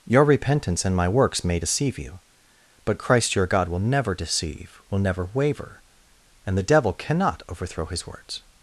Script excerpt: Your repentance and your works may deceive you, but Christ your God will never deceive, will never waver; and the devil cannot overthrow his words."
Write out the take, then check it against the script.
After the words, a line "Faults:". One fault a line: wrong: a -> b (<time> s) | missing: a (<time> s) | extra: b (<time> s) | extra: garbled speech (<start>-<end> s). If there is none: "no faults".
Your repentance and my works may deceive you, but Christ your God will never deceive, will never waver; and the devil cannot overthrow his words."
Faults:
wrong: your -> my (0.9 s)